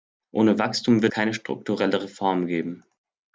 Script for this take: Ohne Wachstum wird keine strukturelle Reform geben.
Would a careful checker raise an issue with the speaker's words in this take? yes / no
no